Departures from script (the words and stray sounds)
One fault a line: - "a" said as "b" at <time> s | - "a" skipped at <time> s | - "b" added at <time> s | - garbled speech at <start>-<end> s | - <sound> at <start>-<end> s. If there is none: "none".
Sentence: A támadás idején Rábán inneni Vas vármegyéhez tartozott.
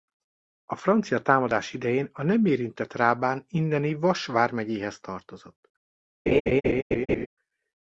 - "francia" added at 0.8 s
- "a nem érintett" added at 2.1 s
- laugh at 6.3-7.3 s